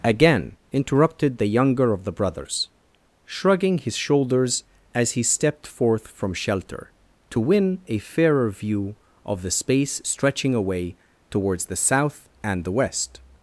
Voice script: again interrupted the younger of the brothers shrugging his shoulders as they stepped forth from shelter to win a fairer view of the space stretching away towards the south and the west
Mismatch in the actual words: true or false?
true